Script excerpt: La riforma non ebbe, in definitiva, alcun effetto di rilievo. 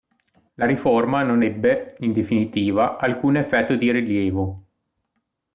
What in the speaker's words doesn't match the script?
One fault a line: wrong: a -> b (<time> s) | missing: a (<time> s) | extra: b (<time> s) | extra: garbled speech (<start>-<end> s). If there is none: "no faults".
no faults